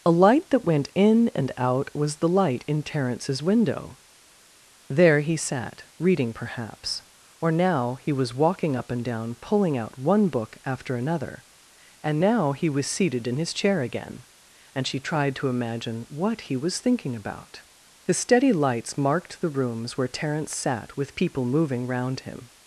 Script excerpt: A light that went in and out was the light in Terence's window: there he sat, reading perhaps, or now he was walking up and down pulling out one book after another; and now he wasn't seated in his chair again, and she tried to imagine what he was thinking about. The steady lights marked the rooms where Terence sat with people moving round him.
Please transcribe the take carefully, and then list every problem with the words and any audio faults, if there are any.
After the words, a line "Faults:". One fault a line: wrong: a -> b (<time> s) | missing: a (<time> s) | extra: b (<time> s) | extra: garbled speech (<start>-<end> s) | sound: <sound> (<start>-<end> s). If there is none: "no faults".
A light that went in and out was the light in Terence's window: there he sat, reading perhaps, or now he was walking up and down pulling out one book after another; and now he was seated in his chair again, and she tried to imagine what he was thinking about. The steady lights marked the rooms where Terence sat with people moving round him.
Faults:
wrong: wasn't -> was (12.7 s)